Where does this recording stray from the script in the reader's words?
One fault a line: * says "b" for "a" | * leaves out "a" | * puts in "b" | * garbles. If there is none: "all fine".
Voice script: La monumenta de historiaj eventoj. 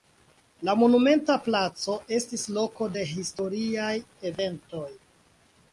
* puts in "placo estis loko"